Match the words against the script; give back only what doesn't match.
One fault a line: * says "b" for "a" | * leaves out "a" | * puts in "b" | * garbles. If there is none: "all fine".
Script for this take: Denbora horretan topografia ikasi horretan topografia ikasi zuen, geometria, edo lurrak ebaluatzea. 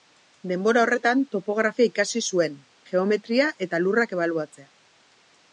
* leaves out "horretan topografia ikasi"
* says "eta" for "edo"